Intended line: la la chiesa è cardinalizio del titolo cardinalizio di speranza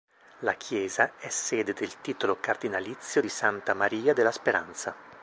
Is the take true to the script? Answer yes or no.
no